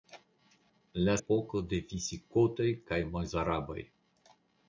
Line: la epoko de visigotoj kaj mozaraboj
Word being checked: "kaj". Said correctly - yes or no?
yes